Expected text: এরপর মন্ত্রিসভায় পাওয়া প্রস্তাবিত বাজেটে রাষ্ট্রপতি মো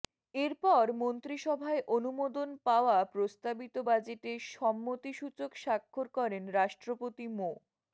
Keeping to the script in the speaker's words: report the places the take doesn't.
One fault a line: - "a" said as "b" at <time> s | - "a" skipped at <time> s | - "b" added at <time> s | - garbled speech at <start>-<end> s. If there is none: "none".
- "অনুমোদন" added at 1.9 s
- "সম্মতিসূচক স্বাক্ষর করেন" added at 4.5 s